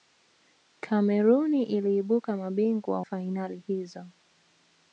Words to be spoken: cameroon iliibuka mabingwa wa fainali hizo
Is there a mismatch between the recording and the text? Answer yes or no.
yes